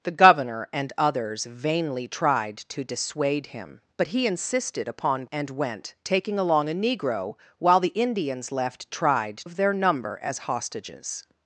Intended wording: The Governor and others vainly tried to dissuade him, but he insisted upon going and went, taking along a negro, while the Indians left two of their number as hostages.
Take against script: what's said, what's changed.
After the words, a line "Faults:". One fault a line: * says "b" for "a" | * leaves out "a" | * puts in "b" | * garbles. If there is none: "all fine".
The Governor and others vainly tried to dissuade him, but he insisted upon and went, taking along a negro, while the Indians left tried of their number as hostages.
Faults:
* leaves out "going"
* says "tried" for "two"